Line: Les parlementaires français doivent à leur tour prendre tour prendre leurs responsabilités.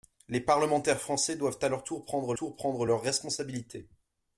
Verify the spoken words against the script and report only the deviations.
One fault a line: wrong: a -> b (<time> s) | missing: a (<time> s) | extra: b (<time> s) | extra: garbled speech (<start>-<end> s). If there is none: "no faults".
no faults